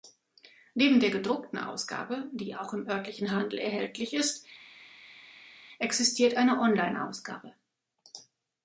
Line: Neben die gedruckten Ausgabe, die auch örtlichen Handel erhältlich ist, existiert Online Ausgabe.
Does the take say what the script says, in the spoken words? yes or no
no